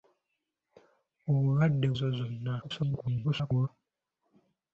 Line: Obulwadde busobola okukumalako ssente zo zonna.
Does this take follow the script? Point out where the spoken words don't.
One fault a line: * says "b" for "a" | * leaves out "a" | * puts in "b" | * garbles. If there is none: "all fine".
* leaves out "busobola okukumalako ssente"
* garbles